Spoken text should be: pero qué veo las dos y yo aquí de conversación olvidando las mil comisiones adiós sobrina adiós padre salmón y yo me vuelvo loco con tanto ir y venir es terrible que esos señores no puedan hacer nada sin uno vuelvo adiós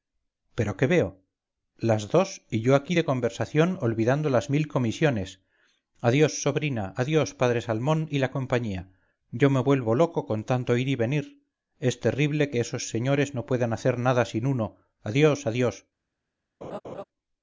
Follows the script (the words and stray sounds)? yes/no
no